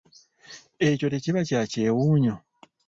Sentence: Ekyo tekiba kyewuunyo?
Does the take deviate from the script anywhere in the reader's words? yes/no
yes